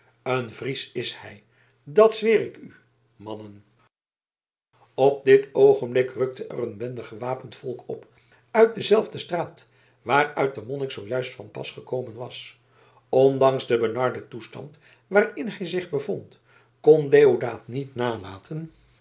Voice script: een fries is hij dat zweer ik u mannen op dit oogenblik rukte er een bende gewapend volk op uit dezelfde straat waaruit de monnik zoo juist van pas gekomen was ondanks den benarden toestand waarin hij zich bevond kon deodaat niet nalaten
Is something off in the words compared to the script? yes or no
no